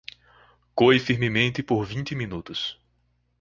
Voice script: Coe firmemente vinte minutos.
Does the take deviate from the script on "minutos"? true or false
false